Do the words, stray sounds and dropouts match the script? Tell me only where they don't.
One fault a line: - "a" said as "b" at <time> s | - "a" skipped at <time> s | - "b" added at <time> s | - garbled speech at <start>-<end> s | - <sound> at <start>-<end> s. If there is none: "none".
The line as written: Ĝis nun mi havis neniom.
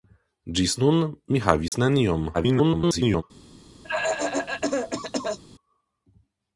- dropout at 1.7-1.7 s
- garbled speech at 2.3-3.2 s
- cough at 3.8-5.4 s